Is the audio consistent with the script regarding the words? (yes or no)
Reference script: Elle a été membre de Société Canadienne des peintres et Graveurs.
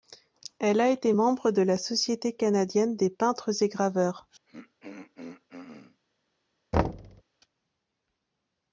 no